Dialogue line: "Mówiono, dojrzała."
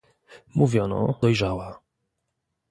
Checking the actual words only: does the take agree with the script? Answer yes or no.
yes